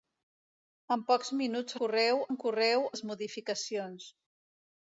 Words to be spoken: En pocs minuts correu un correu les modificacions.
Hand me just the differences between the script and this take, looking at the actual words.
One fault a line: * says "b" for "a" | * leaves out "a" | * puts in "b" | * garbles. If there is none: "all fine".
all fine